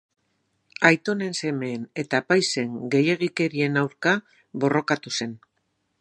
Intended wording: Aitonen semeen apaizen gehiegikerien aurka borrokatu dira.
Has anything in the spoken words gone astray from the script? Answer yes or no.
yes